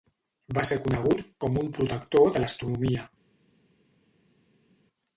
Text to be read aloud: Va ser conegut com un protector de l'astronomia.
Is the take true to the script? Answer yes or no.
yes